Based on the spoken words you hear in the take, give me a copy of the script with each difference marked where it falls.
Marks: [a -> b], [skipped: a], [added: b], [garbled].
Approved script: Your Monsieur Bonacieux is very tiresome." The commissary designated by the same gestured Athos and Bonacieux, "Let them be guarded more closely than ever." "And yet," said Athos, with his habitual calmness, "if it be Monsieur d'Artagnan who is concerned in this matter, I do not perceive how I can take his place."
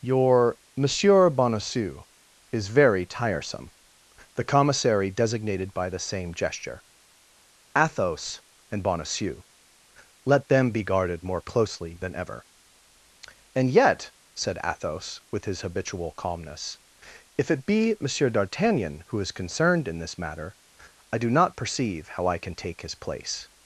Your Monsieur Bonacieux is very tiresome." The commissary designated by the same [gestured -> gesture] Athos and Bonacieux, "Let them be guarded more closely than ever." "And yet," said Athos, with his habitual calmness, "if it be Monsieur d'Artagnan who is concerned in this matter, I do not perceive how I can take his place."